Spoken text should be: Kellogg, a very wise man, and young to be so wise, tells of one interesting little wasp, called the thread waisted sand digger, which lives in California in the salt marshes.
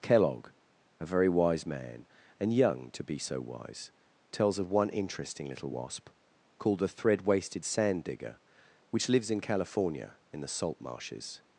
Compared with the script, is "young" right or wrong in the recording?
right